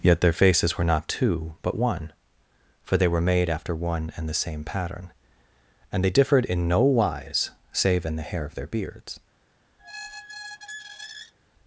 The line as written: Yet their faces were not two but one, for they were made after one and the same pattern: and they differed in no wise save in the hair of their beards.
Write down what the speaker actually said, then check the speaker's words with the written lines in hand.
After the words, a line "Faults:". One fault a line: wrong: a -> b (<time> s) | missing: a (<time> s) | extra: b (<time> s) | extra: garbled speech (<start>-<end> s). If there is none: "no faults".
Yet their faces were not two but one, for they were made after one and the same pattern: and they differed in no wise save in the hair of their beards.
Faults:
no faults